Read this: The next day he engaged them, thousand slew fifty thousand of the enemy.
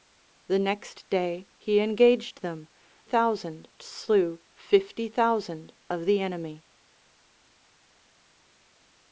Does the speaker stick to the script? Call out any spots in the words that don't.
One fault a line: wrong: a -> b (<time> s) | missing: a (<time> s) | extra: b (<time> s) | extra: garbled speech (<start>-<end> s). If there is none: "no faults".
no faults